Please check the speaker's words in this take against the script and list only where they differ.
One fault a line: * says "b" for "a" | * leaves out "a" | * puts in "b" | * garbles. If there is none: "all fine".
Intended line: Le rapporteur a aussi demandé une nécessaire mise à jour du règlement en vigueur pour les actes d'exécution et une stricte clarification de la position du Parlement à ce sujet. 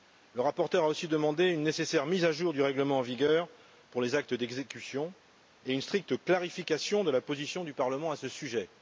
all fine